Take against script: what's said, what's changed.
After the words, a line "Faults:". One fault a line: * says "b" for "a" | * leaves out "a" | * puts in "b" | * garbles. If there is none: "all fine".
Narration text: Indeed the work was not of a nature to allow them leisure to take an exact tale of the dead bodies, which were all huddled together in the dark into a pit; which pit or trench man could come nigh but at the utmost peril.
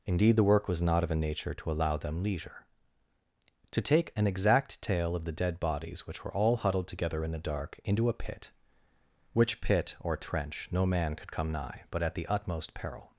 Indeed the work was not of a nature to allow them leisure to take an exact tale of the dead bodies, which were all huddled together in the dark into a pit; which pit or trench no man could come nigh but at the utmost peril.
Faults:
* puts in "no"